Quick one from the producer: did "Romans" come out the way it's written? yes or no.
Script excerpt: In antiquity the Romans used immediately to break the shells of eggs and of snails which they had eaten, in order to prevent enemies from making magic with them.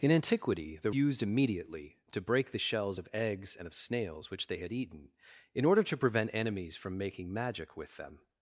no